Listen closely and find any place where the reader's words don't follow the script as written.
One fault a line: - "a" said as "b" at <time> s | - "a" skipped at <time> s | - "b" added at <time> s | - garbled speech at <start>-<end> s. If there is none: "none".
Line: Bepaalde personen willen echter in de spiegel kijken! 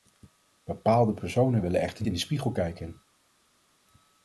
none